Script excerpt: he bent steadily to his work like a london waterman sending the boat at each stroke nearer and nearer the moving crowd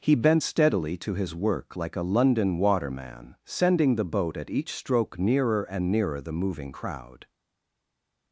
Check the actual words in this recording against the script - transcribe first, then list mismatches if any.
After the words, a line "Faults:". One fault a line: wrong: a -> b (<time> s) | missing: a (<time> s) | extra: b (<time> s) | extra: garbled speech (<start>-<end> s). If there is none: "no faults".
he bent steadily to his work like a london waterman sending the boat at each stroke nearer and nearer the moving crowd
Faults:
no faults